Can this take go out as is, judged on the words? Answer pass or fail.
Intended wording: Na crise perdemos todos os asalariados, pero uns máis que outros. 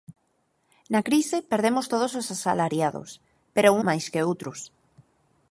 fail